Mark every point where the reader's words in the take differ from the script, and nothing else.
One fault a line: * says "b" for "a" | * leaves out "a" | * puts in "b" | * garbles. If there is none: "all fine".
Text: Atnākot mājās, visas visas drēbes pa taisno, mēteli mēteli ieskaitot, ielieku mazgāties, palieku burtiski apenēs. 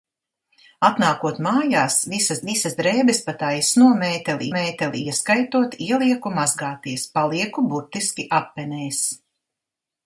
all fine